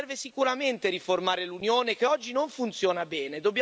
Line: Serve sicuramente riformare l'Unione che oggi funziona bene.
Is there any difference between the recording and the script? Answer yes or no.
yes